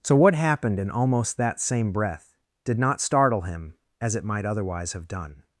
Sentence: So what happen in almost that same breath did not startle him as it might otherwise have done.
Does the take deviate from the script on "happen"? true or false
true